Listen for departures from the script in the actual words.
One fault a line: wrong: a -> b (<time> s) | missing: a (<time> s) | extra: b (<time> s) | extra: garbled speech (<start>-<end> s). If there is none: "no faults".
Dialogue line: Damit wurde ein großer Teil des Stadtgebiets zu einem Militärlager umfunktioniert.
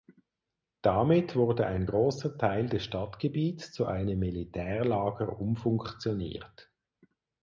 no faults